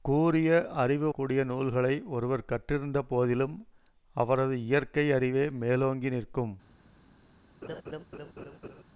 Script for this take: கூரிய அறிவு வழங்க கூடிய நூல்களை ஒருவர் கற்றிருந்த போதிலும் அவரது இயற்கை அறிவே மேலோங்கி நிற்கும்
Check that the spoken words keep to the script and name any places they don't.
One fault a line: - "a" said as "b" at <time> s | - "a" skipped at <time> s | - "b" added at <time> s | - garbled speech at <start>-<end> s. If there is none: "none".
- "வழங்க" skipped at 1.1 s